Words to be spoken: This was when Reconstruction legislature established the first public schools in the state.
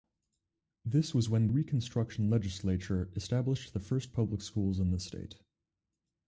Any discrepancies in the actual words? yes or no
no